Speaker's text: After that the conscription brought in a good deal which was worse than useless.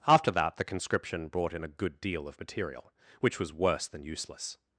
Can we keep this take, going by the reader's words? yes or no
no